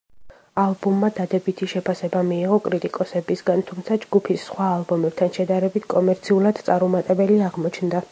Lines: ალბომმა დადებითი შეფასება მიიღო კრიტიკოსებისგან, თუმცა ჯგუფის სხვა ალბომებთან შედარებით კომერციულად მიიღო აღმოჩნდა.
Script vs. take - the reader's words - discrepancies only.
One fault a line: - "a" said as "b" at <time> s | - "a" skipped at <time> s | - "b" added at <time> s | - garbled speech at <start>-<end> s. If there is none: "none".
- "მიიღო" said as "წარუმატებელი" at 6.7 s